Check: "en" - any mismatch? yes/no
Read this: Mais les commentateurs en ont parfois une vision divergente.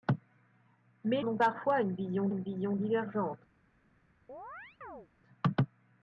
yes